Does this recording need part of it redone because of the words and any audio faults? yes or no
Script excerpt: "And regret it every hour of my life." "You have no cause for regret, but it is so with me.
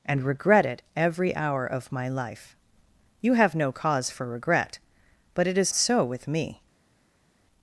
no